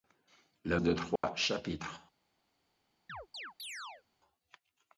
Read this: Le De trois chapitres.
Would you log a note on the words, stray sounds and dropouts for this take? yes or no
yes